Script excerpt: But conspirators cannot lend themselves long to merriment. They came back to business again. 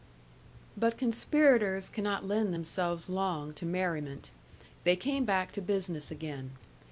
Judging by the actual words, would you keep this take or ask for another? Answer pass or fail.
pass